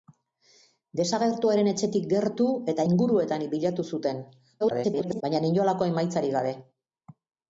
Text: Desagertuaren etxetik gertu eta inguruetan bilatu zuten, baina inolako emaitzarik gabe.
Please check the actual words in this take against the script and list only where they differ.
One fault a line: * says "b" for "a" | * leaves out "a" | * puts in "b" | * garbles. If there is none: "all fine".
* garbles